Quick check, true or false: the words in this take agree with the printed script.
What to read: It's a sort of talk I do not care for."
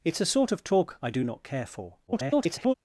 false